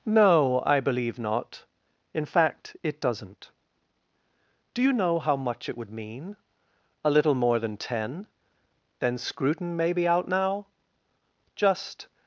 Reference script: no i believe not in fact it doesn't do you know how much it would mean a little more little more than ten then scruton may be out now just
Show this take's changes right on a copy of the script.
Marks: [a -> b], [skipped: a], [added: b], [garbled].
no i believe not in fact it doesn't do you know how much it would mean a little more [skipped: little more] than ten then scruton may be out now just